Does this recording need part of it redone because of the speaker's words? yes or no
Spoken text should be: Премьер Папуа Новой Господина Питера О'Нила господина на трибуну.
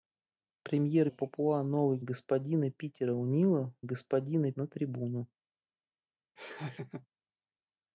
no